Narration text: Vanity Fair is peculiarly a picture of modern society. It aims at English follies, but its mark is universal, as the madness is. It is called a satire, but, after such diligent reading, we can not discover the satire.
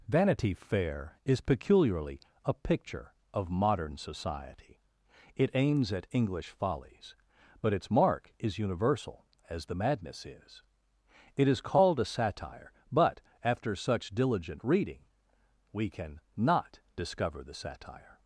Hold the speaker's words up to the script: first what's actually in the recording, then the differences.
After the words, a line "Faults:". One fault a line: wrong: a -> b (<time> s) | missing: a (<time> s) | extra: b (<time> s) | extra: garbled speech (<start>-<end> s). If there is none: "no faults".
Vanity Fair is peculiarly a picture of modern society. It aims at English follies, but its mark is universal, as the madness is. It is called a satire, but, after such diligent reading, we can not discover the satire.
Faults:
no faults